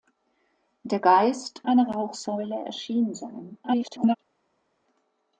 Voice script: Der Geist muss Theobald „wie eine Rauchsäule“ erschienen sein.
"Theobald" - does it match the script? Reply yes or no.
no